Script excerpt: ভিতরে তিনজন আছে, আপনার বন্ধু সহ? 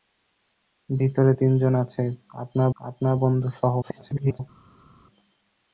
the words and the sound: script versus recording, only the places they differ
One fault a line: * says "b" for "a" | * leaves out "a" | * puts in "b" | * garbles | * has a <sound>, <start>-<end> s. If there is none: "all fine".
* puts in "আপনার"
* garbles